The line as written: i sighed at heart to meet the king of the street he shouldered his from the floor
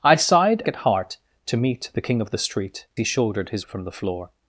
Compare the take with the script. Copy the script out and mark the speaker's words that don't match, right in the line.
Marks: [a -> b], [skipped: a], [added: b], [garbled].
i sighed at heart to meet the king of the street he shouldered his from the floor